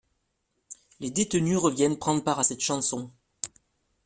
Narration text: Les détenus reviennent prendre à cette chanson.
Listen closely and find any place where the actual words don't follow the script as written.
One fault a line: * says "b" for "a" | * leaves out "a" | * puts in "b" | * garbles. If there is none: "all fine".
* puts in "part"